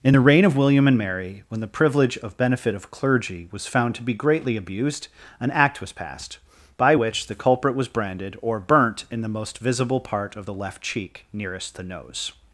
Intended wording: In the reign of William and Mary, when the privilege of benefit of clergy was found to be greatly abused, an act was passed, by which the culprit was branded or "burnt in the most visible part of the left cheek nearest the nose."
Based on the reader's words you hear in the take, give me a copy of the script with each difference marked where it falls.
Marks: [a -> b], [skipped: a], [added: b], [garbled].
In the reign of William and Mary, when the privilege of benefit of clergy was found to be greatly abused, an act was passed, by which the culprit was branded or "burnt in the most visible part of the left cheek nearest the nose."